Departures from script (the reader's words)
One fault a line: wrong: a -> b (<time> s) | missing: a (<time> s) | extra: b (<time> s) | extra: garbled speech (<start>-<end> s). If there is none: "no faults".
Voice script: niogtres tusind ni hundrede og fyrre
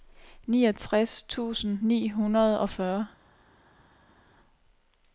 no faults